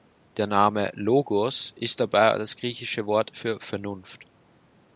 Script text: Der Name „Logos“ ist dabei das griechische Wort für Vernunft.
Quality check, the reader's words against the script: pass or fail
pass